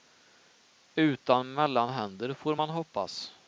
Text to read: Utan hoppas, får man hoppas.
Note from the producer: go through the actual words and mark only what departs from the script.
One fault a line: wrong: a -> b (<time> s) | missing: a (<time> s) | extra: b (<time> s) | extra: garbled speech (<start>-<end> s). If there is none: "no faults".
wrong: hoppas -> mellanhänder (1.5 s)